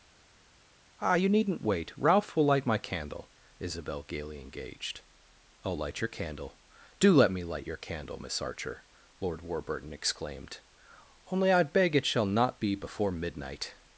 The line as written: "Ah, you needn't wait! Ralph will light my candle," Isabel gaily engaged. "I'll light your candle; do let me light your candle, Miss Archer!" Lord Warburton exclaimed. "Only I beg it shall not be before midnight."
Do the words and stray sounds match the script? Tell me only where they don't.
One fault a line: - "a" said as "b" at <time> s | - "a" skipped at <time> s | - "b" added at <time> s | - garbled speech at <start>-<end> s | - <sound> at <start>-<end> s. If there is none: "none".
none